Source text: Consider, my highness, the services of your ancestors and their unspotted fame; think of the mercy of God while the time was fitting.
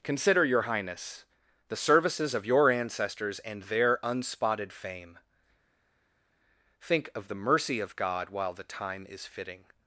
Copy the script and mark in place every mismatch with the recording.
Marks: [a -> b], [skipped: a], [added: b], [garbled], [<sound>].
Consider, [my -> your] highness, the services of your ancestors and their unspotted fame; think of the mercy of God while the time [was -> is] fitting.